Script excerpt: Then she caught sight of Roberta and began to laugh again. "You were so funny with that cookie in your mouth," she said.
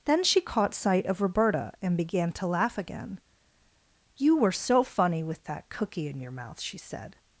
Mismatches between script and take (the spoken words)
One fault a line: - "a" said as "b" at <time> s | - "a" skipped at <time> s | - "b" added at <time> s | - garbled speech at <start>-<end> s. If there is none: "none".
none